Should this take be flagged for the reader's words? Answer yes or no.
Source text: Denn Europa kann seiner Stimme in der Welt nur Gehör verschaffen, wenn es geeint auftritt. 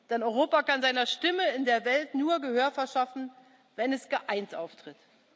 no